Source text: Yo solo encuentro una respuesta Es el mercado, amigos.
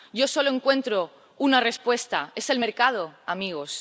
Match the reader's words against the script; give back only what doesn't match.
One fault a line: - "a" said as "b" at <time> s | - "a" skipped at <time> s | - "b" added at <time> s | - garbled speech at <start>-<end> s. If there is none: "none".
none